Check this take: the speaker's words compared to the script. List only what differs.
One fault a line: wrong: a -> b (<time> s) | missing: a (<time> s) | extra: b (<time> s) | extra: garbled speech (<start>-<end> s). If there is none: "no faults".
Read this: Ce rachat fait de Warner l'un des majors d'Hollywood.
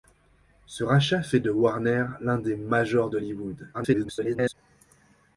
extra: garbled speech (3.7-4.5 s)